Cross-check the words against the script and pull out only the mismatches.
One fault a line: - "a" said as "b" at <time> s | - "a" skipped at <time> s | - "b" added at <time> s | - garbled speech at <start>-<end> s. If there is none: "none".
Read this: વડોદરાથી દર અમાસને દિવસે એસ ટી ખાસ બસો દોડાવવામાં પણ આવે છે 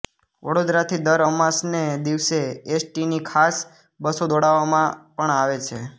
- "ની" added at 3.1 s